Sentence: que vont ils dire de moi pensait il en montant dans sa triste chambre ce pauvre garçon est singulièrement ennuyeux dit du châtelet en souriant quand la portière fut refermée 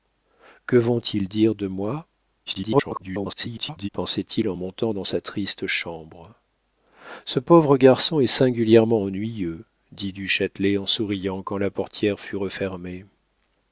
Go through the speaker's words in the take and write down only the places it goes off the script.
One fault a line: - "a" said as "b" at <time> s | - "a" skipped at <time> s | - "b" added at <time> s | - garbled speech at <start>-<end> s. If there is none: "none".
- garbled speech at 2.5-3.9 s